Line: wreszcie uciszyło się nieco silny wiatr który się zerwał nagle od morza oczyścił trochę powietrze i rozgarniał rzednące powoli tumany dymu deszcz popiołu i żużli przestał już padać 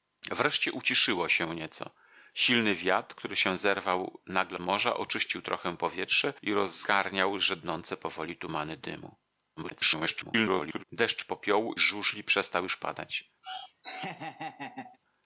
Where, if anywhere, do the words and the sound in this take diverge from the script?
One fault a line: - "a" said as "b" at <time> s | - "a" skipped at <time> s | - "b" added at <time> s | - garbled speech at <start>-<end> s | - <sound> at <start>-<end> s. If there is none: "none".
- "od" skipped at 4.6 s
- garbled speech at 9.6-10.8 s
- "i" skipped at 11.7 s
- laugh at 13.4-15.0 s